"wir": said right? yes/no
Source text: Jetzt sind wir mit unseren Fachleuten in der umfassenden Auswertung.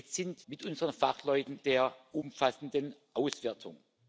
no